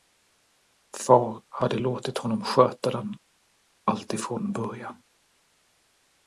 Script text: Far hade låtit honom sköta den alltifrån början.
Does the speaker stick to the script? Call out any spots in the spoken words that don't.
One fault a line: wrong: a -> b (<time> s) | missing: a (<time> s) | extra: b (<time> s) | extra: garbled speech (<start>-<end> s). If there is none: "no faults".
no faults